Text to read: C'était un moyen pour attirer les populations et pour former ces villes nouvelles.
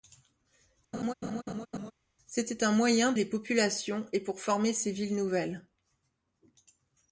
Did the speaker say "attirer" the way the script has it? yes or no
no